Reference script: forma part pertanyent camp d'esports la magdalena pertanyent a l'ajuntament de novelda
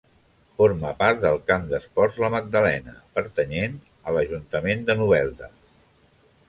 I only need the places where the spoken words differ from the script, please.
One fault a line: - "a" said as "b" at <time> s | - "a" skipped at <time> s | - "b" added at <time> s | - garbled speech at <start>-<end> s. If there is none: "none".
- "pertanyent" said as "del" at 1.2 s